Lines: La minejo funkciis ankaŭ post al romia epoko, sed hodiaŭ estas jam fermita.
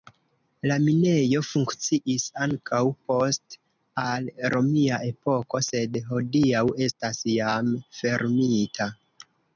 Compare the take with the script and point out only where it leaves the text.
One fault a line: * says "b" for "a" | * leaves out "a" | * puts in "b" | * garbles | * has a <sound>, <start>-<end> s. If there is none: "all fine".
all fine